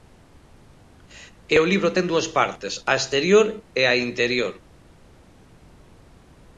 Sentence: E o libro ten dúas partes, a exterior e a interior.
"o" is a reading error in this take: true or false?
false